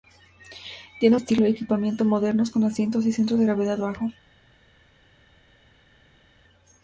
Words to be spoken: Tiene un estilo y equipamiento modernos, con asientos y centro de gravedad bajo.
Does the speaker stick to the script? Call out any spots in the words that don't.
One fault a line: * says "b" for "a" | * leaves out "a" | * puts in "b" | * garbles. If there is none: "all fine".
* leaves out "un"